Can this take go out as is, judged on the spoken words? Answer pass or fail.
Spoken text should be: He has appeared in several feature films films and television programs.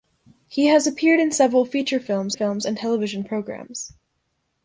pass